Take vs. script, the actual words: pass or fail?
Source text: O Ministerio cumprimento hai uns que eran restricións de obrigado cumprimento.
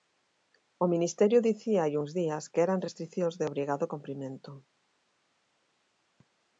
fail